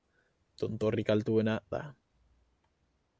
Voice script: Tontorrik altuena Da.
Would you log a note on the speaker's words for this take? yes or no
no